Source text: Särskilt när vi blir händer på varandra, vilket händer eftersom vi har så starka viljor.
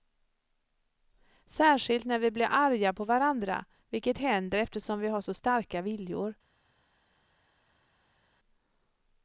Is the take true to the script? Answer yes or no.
no